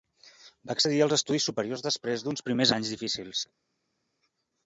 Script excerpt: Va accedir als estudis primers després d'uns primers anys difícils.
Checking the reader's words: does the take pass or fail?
fail